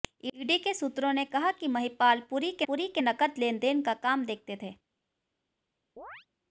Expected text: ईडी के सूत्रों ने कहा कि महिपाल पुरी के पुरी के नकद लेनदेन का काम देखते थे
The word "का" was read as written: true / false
true